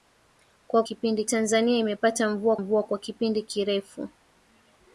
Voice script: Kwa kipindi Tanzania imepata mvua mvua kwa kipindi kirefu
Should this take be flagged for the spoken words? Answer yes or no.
no